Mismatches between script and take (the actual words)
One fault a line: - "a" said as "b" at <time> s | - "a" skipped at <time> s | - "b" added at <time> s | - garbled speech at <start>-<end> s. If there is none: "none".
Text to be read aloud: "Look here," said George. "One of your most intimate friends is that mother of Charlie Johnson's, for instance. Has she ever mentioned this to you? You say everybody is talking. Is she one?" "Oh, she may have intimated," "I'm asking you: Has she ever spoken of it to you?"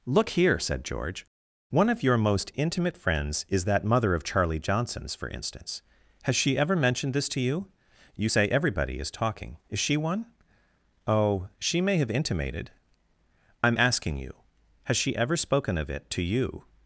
none